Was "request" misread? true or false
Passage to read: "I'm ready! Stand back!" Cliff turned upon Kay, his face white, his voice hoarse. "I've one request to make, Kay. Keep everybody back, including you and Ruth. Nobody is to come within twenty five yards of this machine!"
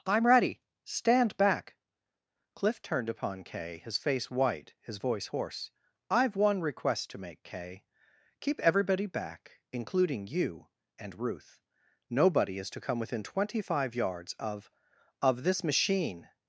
false